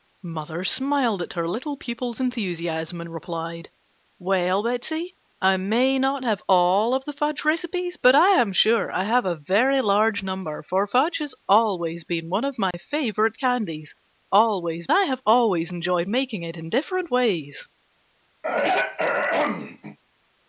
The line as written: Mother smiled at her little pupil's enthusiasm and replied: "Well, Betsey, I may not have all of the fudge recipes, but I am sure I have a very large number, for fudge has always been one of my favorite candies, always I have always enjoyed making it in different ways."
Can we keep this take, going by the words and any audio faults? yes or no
no